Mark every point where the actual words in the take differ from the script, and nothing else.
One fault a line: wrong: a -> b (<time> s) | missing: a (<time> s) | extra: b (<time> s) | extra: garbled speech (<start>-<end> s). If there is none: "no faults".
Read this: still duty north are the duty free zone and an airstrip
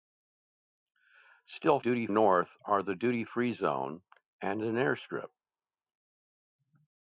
no faults